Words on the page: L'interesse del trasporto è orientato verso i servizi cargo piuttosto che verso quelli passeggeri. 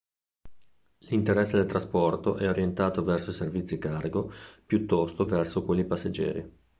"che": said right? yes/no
no